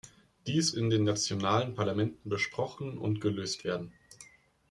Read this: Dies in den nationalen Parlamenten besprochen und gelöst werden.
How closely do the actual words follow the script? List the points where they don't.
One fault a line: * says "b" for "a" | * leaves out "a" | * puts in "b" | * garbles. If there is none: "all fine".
all fine